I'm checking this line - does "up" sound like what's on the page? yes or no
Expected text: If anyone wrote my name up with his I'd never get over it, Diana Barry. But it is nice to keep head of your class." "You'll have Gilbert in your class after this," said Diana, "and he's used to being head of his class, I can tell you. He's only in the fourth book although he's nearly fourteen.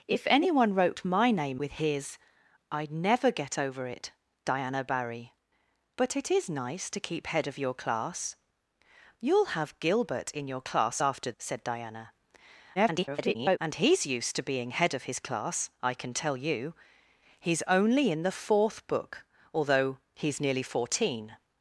no